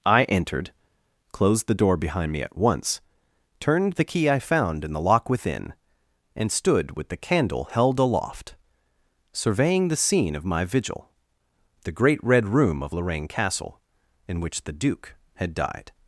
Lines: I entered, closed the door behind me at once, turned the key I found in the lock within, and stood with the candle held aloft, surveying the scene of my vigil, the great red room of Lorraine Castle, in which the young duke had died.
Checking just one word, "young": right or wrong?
wrong